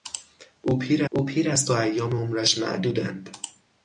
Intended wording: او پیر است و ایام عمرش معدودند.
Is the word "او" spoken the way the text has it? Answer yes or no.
yes